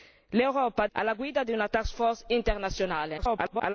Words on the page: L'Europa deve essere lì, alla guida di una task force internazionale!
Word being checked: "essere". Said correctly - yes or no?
no